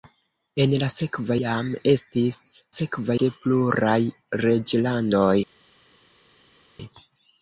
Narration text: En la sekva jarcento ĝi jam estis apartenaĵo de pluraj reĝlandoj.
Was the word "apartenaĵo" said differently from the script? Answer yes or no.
yes